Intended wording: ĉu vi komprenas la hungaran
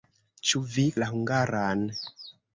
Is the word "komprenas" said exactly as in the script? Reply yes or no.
no